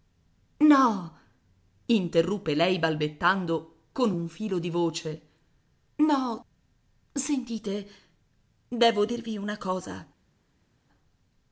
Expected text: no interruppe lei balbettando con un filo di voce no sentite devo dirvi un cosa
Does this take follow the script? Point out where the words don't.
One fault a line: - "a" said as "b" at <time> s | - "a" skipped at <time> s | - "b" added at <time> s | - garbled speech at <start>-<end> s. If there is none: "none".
- "un" said as "una" at 9.4 s